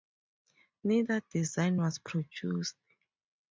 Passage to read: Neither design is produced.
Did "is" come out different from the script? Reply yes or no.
yes